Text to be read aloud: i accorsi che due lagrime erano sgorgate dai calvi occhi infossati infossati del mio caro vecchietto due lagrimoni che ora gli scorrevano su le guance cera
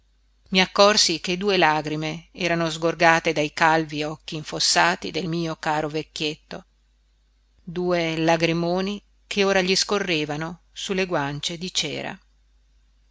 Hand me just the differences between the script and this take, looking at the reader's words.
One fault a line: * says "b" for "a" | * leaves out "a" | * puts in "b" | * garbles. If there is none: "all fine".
* leaves out "infossati"
* puts in "di"